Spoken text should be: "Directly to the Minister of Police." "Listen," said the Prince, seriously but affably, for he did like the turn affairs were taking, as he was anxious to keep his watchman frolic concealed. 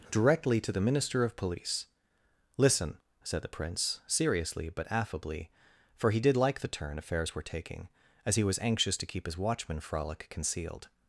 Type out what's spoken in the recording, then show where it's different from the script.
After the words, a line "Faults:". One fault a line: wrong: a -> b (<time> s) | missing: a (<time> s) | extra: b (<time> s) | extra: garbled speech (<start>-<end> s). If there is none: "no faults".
"Directly to the Minister of Police." "Listen," said the Prince, seriously but affably, for he did like the turn affairs were taking, as he was anxious to keep his watchman frolic concealed.
Faults:
no faults